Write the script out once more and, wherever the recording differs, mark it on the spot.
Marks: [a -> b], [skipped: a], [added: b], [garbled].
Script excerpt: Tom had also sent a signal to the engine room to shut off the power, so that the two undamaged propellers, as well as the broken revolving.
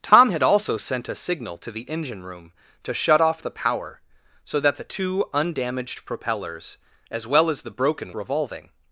Tom had also sent a signal to the engine room to shut off the power, so that the two undamaged propellers, as well as the broken revolving.